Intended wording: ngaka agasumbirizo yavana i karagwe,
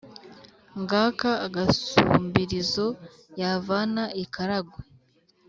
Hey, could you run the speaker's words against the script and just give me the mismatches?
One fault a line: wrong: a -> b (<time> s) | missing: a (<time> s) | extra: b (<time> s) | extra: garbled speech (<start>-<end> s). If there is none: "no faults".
no faults